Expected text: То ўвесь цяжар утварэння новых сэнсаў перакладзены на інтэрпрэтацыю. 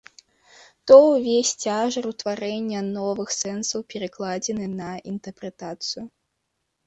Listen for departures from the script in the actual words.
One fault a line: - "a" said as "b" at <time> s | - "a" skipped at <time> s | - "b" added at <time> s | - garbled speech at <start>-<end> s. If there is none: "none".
none